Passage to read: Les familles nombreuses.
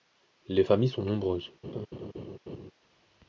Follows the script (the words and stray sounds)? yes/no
no